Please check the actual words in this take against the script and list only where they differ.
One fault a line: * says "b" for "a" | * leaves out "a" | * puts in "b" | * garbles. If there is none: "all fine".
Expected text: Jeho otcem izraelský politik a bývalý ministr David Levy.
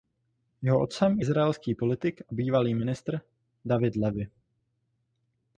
all fine